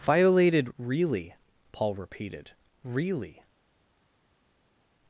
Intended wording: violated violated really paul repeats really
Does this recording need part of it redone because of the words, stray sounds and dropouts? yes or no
yes